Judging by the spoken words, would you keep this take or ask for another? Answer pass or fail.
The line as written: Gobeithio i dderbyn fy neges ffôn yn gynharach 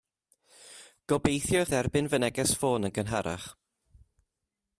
pass